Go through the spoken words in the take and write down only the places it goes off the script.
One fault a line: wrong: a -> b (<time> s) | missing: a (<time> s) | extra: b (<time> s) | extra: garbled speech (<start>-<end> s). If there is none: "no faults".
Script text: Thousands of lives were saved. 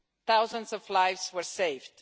no faults